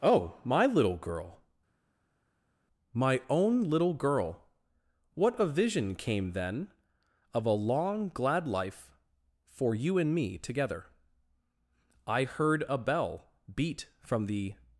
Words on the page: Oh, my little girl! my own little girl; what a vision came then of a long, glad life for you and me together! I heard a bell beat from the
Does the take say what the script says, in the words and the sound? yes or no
yes